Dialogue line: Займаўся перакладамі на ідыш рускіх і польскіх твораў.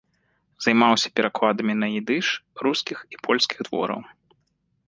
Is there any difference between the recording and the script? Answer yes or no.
no